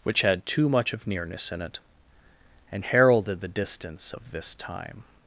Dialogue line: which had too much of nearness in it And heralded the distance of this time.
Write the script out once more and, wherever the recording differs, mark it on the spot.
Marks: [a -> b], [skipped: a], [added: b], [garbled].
which had too much of nearness in it And heralded the distance of this time.